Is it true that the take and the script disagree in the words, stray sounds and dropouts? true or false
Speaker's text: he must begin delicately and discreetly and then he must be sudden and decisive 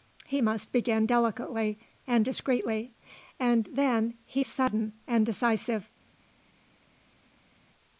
true